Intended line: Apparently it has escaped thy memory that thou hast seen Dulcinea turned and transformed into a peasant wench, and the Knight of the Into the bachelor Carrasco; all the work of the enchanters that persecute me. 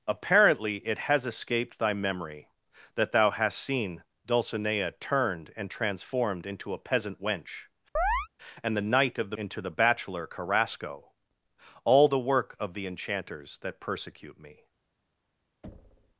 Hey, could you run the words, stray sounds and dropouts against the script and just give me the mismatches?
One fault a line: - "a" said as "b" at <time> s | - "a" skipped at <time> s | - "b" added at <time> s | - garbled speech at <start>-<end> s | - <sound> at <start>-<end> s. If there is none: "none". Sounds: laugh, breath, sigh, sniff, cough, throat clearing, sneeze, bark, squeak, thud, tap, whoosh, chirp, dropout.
- chirp at 8.0-8.3 s
- thud at 15.6-16.2 s